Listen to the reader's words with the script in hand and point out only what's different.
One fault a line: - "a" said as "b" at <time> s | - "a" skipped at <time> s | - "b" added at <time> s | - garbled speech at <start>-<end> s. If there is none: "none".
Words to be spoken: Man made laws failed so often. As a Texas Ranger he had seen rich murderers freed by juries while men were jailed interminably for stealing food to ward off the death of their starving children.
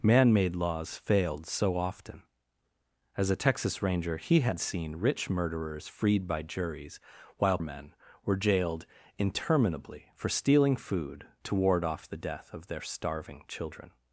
none